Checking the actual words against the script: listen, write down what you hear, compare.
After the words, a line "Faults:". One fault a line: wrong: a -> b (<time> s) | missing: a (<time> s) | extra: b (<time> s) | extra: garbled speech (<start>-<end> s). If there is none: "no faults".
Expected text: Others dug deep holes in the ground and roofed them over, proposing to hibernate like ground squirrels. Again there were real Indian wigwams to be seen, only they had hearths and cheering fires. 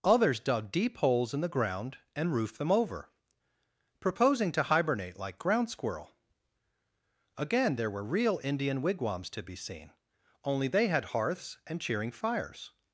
Others dug deep holes in the ground and roofed them over, proposing to hibernate like ground squirrel. Again there were real Indian wigwams to be seen, only they had hearths and cheering fires.
Faults:
wrong: squirrels -> squirrel (5.7 s)